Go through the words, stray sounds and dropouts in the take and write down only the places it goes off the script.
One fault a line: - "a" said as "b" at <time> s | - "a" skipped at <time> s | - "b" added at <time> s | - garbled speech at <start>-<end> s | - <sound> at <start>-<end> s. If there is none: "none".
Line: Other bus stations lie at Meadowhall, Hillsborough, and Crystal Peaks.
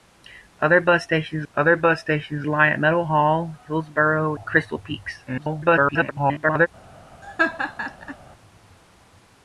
- "other bus stations" added at 1.5 s
- "and" skipped at 4.4 s
- garbled speech at 5.3-6.7 s
- laugh at 7.2-8.2 s